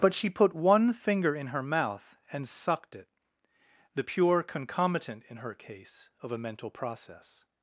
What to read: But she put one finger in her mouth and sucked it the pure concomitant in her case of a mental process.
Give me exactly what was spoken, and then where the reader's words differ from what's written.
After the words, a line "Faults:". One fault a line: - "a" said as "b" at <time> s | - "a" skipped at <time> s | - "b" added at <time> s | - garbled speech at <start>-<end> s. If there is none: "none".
But she put one finger in her mouth and sucked it the pure concomitant in her case of a mental process.
Faults:
none